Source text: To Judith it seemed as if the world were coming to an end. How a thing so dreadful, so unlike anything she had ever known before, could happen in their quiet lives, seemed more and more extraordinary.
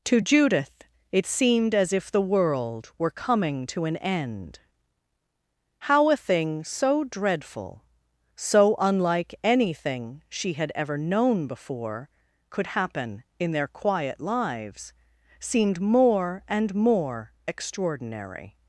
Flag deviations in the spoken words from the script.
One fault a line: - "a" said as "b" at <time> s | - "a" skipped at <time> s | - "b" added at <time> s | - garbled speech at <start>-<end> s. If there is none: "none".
none